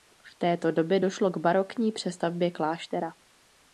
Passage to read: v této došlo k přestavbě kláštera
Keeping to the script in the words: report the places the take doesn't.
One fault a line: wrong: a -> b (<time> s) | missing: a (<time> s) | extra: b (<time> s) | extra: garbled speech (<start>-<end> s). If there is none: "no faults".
extra: době (0.7 s)
extra: barokní (1.4 s)